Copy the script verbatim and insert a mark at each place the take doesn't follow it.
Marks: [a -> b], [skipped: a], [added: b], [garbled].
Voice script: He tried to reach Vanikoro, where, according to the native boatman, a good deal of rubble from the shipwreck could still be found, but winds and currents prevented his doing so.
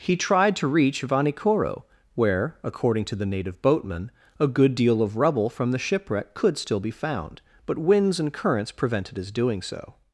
He tried to reach Vanikoro, where, according to the native boatman, a good deal of rubble from the shipwreck could still be found, but winds and currents prevented his doing so.